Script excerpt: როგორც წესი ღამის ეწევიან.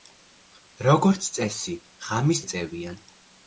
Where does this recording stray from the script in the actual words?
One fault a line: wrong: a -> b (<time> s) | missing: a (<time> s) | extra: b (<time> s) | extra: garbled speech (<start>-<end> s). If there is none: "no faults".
no faults